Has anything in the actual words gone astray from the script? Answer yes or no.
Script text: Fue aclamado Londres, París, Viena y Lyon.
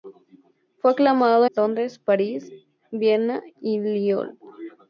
no